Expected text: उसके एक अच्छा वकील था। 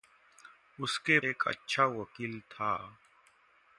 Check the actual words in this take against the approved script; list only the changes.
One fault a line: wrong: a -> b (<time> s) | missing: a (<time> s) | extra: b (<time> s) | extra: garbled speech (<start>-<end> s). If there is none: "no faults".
no faults